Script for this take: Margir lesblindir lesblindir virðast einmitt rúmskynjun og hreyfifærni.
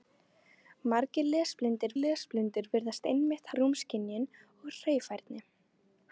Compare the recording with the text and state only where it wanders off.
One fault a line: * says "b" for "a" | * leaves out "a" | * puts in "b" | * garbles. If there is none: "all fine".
all fine